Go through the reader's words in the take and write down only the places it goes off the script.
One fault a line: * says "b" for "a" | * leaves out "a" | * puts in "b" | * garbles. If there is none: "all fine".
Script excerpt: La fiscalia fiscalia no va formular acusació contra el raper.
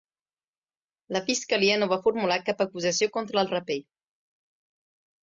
* leaves out "fiscalia"
* puts in "cap"